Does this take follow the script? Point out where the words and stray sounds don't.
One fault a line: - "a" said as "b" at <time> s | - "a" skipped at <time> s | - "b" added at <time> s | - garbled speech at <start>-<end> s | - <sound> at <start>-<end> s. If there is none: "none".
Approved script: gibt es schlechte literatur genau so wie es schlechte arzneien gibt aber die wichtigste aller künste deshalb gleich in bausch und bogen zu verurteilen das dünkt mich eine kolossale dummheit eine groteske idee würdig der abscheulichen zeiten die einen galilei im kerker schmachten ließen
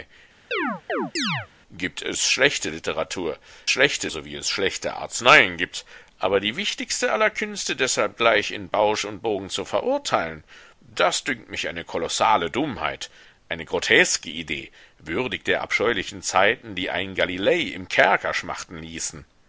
- chirp at 0.5-1.5 s
- "genau" said as "schlechte" at 3.7 s